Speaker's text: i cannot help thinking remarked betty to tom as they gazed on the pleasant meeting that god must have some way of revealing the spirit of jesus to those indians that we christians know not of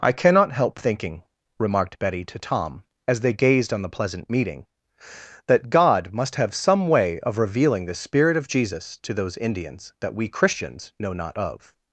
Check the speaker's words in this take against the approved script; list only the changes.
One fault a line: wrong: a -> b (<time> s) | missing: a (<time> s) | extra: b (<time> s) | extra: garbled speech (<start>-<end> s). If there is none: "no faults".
no faults